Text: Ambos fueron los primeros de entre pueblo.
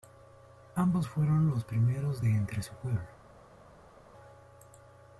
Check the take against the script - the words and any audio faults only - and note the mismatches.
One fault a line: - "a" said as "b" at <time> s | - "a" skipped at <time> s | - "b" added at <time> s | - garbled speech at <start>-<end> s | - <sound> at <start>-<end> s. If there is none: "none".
- "su" added at 2.6 s